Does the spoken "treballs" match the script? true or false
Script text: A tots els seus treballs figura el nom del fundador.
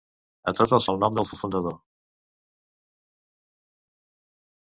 false